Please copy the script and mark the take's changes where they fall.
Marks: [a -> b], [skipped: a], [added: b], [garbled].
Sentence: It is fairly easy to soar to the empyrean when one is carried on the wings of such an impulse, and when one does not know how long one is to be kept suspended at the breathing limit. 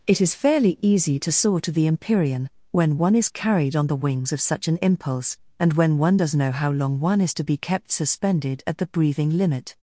It is fairly easy to soar to the empyrean when one is carried on the wings of such an impulse, and when one does [skipped: not] know how long one is to be kept suspended at the breathing limit.